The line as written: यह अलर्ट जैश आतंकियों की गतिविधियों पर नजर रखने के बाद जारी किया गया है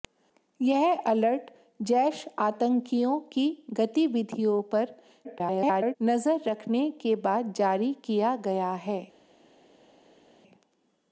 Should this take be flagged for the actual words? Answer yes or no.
yes